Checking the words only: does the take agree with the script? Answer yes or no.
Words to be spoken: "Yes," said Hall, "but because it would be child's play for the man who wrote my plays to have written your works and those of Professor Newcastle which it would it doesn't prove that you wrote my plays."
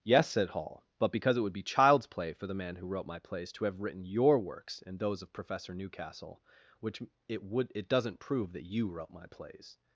yes